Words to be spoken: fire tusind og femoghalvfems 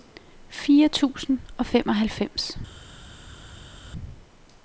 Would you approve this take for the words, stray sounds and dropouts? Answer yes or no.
yes